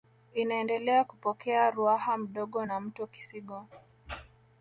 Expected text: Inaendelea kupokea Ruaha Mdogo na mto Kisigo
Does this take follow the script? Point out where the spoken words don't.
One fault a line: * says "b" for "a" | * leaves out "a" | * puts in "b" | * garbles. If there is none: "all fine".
all fine